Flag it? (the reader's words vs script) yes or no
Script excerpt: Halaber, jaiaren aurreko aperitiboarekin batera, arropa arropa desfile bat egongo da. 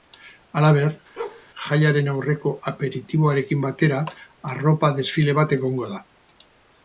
yes